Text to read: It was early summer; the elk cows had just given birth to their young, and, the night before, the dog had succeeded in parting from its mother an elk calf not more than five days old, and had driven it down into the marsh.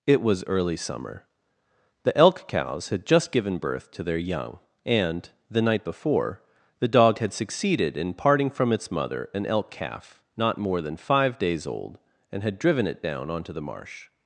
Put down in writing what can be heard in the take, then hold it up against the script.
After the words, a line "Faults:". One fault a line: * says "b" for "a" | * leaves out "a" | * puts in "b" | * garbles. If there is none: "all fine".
It was early summer; the elk cows had just given birth to their young, and, the night before, the dog had succeeded in parting from its mother an elk calf not more than five days old, and had driven it down onto the marsh.
Faults:
* says "onto" for "into"